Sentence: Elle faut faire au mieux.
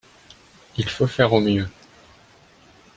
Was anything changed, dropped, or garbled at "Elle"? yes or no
yes